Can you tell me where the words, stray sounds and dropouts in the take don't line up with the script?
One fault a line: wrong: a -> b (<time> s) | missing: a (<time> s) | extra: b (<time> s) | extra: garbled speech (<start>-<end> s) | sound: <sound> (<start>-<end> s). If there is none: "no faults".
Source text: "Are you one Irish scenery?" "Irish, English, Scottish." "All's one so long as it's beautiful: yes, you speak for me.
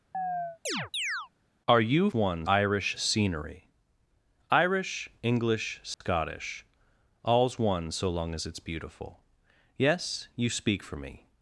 sound: chirp (0.1-1.3 s)
sound: dropout (5.9-6.0 s)